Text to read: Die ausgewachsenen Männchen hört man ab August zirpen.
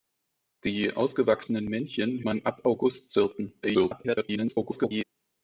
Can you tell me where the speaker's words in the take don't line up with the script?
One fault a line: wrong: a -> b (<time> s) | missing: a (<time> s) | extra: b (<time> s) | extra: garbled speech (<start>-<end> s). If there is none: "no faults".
missing: hört (2.2 s)
extra: garbled speech (3.6-5.0 s)